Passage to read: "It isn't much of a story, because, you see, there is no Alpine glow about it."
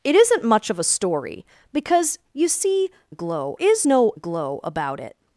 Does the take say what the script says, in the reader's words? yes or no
no